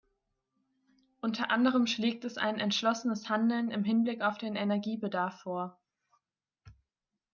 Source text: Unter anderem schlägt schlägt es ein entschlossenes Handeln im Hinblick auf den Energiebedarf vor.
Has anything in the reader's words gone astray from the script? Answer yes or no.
yes